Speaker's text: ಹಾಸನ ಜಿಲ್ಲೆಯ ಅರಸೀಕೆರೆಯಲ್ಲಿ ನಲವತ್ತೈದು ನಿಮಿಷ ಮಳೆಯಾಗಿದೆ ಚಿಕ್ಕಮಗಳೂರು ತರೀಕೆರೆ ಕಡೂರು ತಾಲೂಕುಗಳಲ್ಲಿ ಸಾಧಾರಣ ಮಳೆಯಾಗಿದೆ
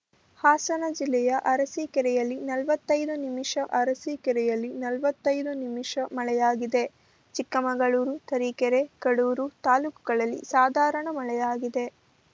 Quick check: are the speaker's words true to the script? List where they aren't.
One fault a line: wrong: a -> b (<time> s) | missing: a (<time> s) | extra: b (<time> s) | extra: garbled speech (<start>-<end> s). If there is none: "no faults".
extra: ಅರಸೀಕೆರೆಯಲ್ಲಿ ನಲವತ್ತೈದು ನಿಮಿಷ (3.8 s)